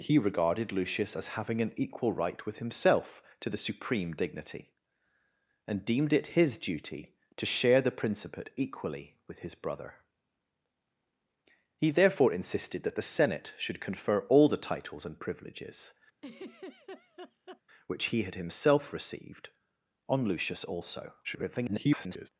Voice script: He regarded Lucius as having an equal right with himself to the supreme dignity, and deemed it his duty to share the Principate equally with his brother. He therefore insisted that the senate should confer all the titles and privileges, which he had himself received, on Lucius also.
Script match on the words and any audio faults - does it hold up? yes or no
no